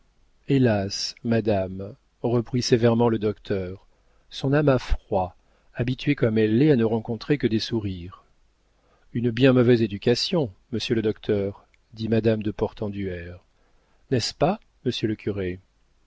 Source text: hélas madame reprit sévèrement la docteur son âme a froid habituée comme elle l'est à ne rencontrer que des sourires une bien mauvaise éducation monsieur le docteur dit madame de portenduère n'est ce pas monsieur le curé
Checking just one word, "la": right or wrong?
wrong